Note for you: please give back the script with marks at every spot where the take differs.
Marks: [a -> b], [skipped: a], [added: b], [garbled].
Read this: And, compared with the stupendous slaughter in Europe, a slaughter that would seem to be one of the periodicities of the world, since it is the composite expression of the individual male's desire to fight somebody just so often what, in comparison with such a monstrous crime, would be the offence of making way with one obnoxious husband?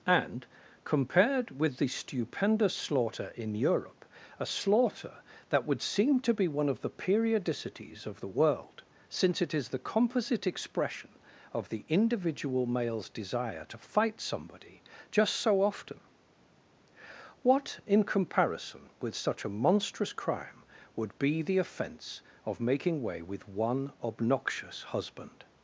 And, compared with the stupendous slaughter in Europe, a slaughter that would seem to be one of the periodicities of the world, since it is the composite expression of the individual male's desire to fight somebody just so often what, in comparison with such a monstrous crime, would be the offence of making way with one obnoxious husband?